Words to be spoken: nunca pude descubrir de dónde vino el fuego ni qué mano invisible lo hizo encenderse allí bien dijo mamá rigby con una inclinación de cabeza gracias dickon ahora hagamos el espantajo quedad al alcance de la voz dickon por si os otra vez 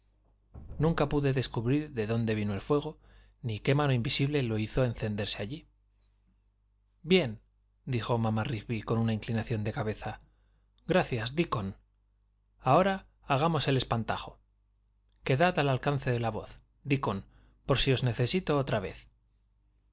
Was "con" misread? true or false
false